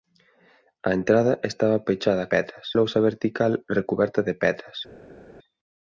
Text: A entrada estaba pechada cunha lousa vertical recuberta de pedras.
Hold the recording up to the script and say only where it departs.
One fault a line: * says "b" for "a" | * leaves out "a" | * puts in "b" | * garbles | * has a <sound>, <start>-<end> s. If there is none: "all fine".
* says "pedras" for "cunha"